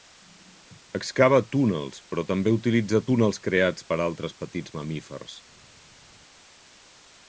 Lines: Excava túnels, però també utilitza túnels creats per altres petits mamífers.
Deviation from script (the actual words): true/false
false